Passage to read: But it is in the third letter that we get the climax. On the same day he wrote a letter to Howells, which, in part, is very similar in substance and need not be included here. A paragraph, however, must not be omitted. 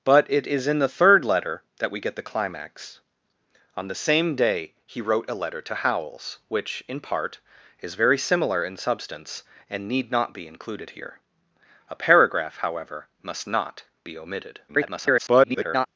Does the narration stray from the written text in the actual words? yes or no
yes